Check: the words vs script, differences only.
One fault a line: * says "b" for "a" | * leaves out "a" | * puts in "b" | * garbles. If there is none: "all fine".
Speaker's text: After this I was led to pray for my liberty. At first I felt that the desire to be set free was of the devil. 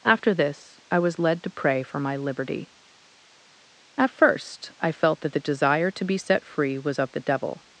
all fine